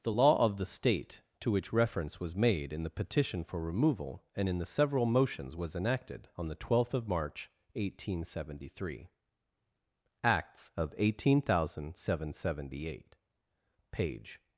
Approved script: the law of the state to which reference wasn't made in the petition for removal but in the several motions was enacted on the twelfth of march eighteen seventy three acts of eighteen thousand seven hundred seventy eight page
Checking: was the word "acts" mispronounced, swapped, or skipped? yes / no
no